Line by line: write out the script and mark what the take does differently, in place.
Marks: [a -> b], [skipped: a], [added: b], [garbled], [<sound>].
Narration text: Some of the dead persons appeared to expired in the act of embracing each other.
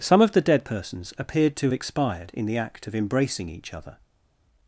Some of the dead persons appeared to expired in the act of embracing each other.